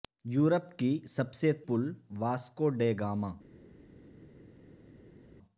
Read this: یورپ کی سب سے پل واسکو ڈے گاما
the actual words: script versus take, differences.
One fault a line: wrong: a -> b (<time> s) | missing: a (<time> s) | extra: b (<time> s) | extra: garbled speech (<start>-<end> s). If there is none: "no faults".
no faults